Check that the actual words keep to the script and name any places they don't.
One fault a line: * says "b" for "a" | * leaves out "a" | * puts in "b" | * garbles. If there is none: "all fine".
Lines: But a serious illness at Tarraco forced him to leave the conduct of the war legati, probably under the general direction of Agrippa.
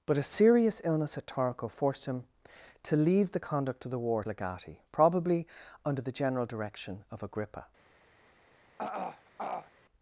all fine